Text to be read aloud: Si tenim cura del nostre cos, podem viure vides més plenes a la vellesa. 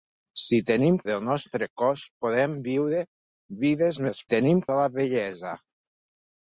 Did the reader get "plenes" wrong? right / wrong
wrong